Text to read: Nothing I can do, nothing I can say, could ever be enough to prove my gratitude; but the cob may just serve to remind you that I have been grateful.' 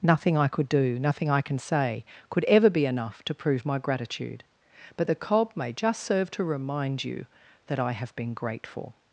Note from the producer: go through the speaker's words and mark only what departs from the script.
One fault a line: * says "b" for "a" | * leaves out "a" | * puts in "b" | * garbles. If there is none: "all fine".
* says "could" for "can"